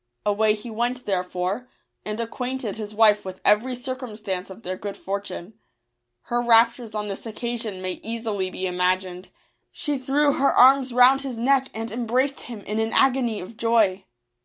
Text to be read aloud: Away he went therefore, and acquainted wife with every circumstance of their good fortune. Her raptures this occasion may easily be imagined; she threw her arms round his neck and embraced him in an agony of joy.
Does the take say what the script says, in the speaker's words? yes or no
no